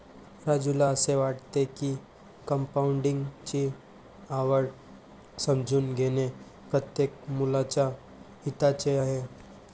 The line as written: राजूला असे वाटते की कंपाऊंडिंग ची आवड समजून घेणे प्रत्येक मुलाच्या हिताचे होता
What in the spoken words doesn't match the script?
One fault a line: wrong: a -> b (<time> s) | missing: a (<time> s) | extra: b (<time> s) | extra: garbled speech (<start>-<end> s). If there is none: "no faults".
wrong: होता -> आहे (9.0 s)